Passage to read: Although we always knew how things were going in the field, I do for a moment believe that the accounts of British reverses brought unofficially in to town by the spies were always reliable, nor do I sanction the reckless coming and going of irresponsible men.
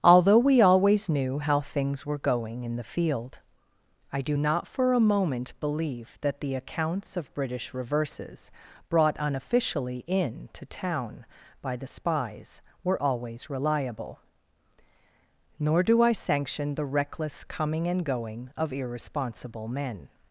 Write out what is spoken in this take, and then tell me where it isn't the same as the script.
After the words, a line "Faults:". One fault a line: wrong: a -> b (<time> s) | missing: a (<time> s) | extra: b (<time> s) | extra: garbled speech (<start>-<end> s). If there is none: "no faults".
Although we always knew how things were going in the field, I do not for a moment believe that the accounts of British reverses brought unofficially in to town by the spies were always reliable, nor do I sanction the reckless coming and going of irresponsible men.
Faults:
extra: not (4.3 s)